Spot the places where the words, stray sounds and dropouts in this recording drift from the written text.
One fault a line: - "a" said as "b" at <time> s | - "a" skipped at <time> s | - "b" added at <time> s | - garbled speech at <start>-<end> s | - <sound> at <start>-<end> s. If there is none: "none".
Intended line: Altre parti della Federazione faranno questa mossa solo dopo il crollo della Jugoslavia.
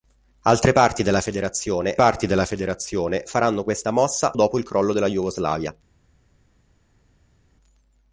- "parti della Federazione" added at 2.0 s
- "solo" skipped at 4.4 s